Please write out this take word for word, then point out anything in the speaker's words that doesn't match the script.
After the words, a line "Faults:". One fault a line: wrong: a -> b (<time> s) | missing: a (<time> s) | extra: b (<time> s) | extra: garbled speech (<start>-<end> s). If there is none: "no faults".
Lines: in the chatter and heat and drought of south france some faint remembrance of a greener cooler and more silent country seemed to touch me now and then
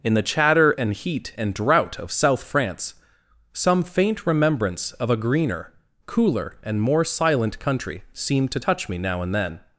in the chatter and heat and drought of south france some faint remembrance of a greener cooler and more silent country seemed to touch me now and then
Faults:
no faults